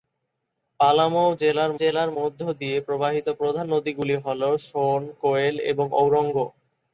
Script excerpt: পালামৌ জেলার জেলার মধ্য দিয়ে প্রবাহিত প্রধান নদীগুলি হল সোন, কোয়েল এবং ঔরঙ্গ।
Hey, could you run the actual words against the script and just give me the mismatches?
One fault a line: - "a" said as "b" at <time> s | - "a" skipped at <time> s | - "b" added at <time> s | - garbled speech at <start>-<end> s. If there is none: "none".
none